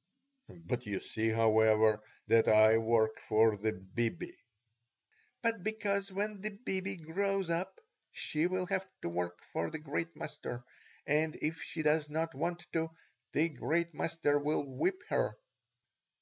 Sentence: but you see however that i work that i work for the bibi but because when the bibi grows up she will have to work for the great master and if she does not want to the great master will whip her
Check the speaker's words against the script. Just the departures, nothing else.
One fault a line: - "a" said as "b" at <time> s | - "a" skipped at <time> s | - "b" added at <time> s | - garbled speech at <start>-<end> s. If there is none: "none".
- "that i work" skipped at 3.2 s